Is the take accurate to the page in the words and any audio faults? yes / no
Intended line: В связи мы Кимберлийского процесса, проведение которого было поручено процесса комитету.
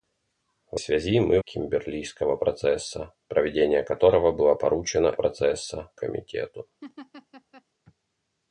no